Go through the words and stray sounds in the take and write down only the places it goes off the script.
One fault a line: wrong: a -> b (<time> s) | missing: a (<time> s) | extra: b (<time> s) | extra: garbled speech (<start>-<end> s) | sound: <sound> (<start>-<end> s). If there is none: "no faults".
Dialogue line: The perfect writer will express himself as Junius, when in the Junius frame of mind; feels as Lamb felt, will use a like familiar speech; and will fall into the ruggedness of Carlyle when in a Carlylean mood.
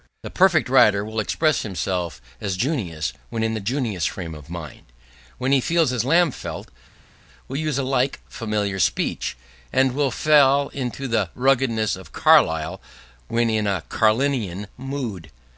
extra: when he (5.4 s)